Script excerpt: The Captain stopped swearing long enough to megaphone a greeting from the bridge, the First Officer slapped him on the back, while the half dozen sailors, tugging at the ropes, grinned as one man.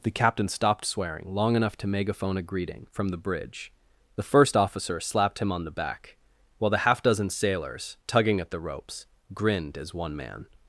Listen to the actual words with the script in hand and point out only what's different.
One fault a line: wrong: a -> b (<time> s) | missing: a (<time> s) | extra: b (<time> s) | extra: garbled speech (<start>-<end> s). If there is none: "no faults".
no faults